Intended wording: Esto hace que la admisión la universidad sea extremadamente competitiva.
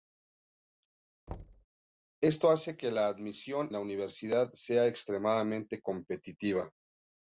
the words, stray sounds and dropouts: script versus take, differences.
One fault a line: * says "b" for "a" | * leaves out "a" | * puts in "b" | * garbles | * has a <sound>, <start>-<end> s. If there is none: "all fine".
* has a thud, 1.3-1.7 s